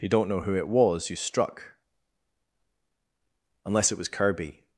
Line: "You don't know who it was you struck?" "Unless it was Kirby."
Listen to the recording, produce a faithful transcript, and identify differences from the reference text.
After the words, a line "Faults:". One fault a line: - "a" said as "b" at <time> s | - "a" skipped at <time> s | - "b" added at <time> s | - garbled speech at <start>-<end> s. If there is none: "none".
"You don't know who it was you struck?" "Unless it was Kirby."
Faults:
none